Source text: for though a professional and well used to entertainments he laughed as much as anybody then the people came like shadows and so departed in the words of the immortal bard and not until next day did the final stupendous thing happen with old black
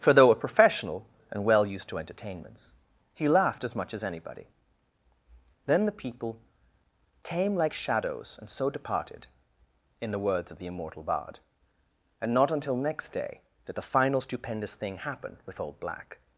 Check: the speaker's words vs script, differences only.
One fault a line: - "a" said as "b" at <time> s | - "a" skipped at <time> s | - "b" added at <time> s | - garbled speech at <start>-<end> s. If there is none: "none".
none